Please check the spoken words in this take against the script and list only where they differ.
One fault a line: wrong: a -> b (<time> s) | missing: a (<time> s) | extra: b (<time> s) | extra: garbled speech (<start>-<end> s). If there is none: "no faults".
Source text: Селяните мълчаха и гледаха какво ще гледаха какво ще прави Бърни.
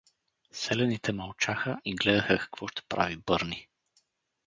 missing: гледаха какво ще (2.8 s)